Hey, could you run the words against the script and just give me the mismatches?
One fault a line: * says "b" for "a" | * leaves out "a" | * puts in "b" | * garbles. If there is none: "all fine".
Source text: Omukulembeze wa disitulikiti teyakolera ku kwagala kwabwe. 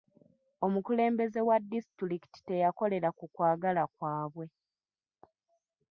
all fine